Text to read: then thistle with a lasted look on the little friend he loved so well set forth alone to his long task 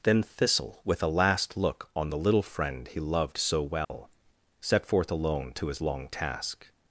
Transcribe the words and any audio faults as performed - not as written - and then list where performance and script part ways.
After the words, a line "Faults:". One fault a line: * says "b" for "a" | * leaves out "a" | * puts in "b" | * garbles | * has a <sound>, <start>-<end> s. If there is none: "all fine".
then thistle with a last look on the little friend he loved so well set forth alone to his long task
Faults:
* says "last" for "lasted"
* has a dropout, 3.8-3.9 s